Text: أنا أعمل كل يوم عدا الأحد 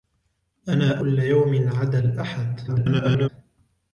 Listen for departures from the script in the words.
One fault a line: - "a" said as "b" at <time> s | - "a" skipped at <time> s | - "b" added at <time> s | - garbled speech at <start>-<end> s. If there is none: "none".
- "أعمل" skipped at 1.0 s
- garbled speech at 2.7-3.3 s